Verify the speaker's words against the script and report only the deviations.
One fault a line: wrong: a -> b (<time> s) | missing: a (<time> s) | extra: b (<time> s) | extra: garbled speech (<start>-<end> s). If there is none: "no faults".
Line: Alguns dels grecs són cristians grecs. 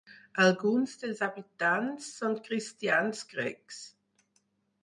wrong: grecs -> habitants (1.3 s)